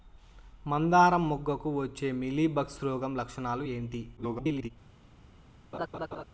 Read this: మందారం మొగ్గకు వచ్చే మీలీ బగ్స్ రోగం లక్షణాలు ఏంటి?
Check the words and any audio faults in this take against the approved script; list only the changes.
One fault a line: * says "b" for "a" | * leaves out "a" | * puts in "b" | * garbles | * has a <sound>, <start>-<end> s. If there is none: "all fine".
* garbles
* has a laugh, 5.7-6.2 s